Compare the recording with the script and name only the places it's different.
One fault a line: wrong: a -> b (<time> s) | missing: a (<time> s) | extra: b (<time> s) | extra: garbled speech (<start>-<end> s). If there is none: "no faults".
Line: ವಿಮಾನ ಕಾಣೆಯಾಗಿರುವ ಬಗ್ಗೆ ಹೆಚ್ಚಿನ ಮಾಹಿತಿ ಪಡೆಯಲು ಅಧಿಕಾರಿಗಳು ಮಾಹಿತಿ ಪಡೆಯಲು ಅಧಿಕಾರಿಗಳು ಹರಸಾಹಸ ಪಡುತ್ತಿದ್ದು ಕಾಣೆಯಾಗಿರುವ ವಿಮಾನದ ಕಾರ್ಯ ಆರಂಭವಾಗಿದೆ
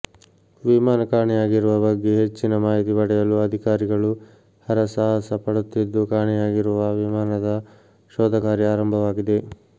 missing: ಮಾಹಿತಿ ಪಡೆಯಲು ಅಧಿಕಾರಿಗಳು (4.1 s)
extra: ಶೋಧ (8.1 s)